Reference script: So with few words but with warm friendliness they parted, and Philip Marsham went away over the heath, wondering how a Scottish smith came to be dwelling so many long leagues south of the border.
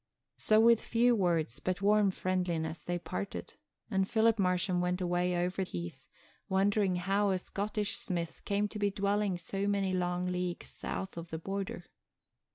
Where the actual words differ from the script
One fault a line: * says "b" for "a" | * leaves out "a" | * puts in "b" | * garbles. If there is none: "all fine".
* leaves out "with"
* leaves out "the"